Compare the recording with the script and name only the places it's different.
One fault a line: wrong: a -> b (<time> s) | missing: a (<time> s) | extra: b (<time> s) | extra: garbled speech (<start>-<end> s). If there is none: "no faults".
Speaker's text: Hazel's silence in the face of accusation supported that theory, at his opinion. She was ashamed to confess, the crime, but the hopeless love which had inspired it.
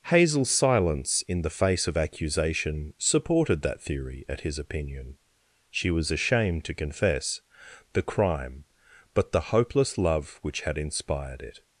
no faults